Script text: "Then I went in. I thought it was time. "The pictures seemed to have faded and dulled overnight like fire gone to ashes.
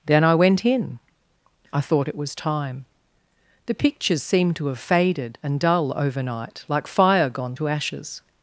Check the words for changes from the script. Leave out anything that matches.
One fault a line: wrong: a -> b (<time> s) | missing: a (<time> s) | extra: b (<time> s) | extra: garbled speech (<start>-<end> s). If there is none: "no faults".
wrong: dulled -> dull (5.6 s)